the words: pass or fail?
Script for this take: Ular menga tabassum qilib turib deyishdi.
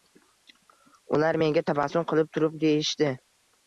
pass